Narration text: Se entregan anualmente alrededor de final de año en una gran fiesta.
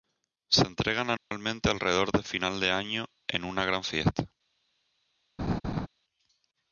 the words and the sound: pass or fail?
fail